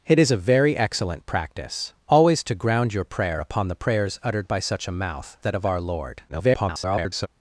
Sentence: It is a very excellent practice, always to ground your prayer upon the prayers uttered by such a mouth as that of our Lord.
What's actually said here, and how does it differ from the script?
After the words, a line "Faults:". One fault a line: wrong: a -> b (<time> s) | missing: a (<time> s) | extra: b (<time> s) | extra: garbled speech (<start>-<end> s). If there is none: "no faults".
It is a very excellent practice, always to ground your prayer upon the prayers uttered by such a mouth that of our Lord. [garbled]
Faults:
missing: as (5.4 s)
extra: garbled speech (6.3-7.3 s)